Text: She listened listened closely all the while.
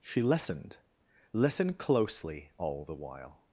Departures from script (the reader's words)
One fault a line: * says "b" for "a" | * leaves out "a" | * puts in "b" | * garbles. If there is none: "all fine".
all fine